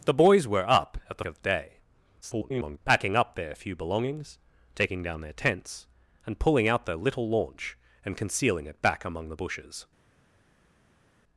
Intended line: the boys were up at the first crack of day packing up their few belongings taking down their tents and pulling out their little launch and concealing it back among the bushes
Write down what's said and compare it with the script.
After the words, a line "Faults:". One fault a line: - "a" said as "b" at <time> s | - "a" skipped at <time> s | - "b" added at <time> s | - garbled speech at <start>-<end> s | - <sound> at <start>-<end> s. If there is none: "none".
the boys were up at the of day [garbled] packing up their few belongings taking down their tents and pulling out their little launch and concealing it back among the bushes
Faults:
- "first crack" skipped at 1.2 s
- garbled speech at 2.2-2.8 s